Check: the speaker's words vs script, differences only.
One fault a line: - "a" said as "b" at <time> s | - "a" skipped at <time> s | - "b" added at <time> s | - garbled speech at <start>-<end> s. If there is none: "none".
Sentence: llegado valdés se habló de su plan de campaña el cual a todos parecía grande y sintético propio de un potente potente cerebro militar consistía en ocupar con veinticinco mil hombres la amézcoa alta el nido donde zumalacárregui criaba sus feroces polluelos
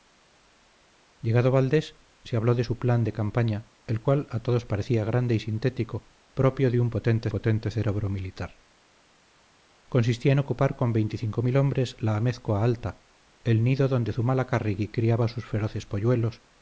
none